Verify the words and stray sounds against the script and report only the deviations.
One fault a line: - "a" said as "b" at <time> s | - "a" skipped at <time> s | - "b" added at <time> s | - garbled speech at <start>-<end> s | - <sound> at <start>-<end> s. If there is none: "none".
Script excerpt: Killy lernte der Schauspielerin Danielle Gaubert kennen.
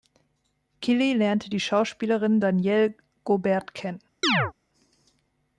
- "der" said as "die" at 1.5 s
- chirp at 4.2-4.5 s